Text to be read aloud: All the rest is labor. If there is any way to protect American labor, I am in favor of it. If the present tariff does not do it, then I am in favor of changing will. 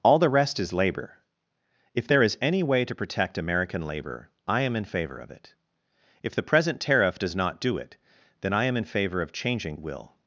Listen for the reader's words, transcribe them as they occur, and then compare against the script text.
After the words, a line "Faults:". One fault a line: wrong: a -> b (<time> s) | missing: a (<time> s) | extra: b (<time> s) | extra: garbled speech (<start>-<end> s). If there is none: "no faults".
All the rest is labor. If there is any way to protect American labor, I am in favor of it. If the present tariff does not do it, then I am in favor of changing will.
Faults:
no faults